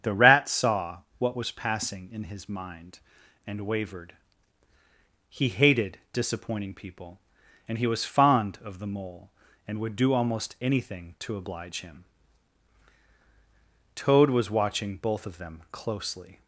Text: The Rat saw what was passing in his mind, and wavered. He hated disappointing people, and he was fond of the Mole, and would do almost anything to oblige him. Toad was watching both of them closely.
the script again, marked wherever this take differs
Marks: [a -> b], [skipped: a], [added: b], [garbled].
The Rat saw what was passing in his mind, and wavered. He hated disappointing people, and he was fond of the Mole, and would do almost anything to oblige him. Toad was watching both of them closely.